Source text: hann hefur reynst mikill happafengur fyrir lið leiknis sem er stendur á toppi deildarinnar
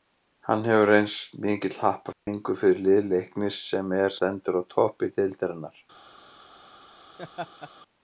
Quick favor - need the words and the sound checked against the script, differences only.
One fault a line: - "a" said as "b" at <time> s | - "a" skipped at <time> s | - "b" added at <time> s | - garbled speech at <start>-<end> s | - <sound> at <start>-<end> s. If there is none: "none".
- dropout at 2.1-2.3 s
- laugh at 7.2-7.7 s